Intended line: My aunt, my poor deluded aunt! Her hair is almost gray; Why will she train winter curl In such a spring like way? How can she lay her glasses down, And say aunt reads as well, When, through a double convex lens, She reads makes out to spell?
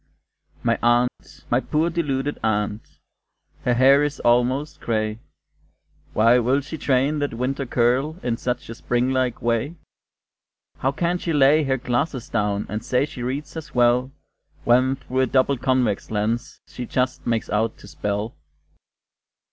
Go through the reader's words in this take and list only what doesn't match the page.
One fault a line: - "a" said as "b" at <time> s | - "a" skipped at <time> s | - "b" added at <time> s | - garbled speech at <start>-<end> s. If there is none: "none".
- "that" added at 7.2 s
- "aunt" said as "she" at 13.0 s
- "reads" said as "just" at 16.8 s